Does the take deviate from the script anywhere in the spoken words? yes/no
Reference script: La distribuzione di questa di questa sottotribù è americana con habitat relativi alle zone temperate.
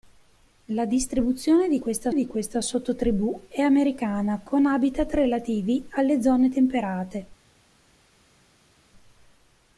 no